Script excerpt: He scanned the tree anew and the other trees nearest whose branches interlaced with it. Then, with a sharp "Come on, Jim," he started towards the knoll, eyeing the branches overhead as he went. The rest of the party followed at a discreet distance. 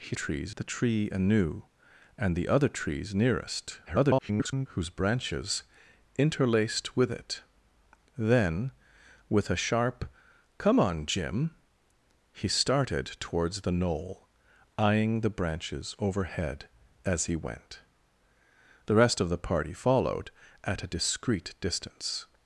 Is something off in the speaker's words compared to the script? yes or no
yes